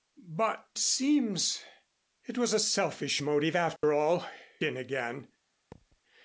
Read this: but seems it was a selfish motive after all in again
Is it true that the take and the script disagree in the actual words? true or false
false